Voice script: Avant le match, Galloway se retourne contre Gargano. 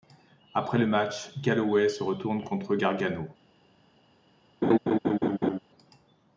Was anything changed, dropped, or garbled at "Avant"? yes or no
yes